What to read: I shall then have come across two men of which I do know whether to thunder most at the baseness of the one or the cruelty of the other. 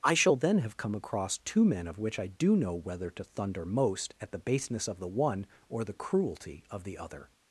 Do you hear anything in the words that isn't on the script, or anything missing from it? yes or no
no